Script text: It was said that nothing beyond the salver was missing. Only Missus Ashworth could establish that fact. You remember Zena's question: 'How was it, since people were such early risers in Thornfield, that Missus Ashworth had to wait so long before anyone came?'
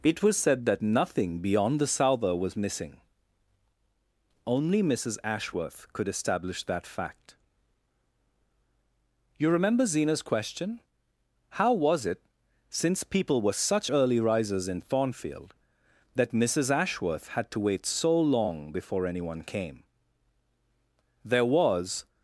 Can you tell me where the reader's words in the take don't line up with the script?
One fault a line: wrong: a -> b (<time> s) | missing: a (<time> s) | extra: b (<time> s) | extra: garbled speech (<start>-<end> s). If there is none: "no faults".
extra: There was (21.2 s)